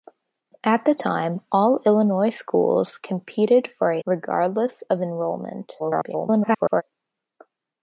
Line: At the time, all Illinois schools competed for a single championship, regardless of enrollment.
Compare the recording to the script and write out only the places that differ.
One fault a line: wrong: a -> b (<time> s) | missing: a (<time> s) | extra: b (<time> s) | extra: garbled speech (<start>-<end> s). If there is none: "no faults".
missing: single championship (4.0 s)
extra: garbled speech (5.8-6.8 s)